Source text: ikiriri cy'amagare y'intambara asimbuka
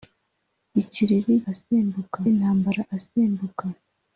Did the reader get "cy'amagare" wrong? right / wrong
wrong